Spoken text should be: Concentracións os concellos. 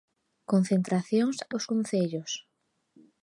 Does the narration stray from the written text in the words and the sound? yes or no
no